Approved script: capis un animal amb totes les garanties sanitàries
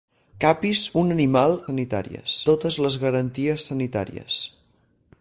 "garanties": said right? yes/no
yes